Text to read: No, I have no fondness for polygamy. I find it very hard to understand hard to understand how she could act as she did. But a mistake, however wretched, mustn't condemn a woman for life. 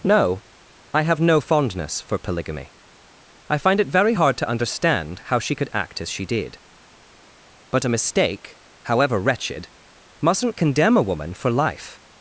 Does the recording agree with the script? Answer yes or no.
no